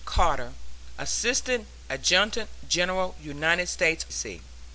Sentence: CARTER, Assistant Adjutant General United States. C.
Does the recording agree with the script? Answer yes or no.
yes